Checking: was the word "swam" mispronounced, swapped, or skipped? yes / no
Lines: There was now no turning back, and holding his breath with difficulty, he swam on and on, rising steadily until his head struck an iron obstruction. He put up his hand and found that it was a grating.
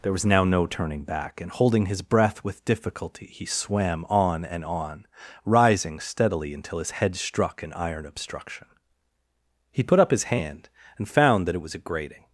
no